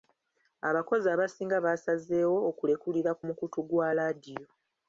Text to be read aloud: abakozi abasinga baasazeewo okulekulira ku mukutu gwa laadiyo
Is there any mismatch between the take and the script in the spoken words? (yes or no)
no